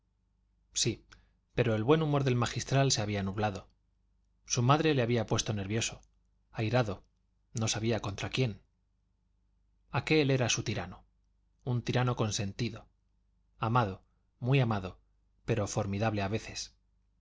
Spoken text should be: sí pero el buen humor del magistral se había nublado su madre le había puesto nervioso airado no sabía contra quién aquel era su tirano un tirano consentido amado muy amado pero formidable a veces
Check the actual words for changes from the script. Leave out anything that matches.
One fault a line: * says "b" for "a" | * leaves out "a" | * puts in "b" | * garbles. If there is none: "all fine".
all fine